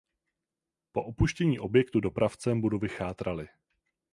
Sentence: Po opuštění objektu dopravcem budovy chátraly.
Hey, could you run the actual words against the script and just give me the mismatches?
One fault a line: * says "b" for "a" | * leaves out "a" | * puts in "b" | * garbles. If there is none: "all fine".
all fine